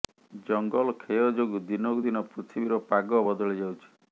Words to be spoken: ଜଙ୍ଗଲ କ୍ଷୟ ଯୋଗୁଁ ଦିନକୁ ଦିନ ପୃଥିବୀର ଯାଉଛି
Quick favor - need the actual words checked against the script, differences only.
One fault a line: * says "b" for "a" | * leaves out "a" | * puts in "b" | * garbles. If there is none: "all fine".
* puts in "ପାଗ ବଦଳି"